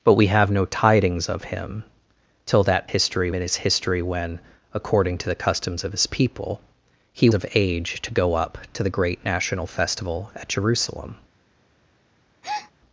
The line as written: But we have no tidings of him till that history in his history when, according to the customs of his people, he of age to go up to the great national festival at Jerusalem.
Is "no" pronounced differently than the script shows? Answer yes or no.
no